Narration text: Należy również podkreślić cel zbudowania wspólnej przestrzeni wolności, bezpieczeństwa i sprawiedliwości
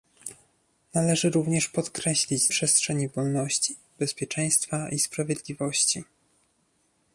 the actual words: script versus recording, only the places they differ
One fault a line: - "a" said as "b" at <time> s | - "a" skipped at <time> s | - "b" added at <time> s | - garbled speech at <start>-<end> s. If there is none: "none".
- "cel zbudowania wspólnej" skipped at 2.5 s